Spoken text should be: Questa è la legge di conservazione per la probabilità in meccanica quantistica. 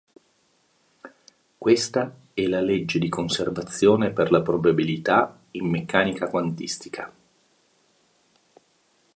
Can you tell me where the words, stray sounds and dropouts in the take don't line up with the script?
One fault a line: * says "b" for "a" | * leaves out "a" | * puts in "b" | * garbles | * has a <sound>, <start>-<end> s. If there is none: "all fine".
all fine